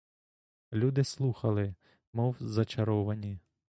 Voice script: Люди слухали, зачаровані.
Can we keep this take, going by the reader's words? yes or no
no